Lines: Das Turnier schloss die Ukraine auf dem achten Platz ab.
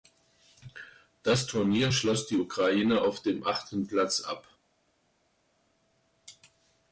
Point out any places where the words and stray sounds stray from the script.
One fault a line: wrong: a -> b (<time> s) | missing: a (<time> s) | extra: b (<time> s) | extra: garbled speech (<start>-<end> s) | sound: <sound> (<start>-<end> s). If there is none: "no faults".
no faults